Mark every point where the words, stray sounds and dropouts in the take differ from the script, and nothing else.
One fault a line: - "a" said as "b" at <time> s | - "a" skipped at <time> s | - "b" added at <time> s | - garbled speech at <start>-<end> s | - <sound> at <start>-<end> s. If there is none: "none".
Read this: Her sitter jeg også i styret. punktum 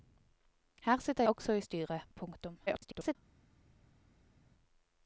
- "jeg" skipped at 1.2 s
- garbled speech at 2.7-3.2 s